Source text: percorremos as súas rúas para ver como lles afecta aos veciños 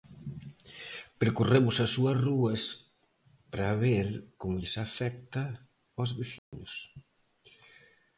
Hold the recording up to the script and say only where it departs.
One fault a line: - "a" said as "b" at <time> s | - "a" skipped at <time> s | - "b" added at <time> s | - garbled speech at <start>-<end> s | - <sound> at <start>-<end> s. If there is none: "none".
- dropout at 6.4-6.5 s